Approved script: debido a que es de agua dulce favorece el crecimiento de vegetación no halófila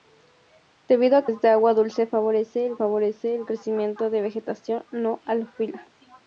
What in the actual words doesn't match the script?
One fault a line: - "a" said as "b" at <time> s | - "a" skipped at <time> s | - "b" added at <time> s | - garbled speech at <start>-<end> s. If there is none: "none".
- "que" skipped at 1.3 s
- "favorece el" added at 2.7 s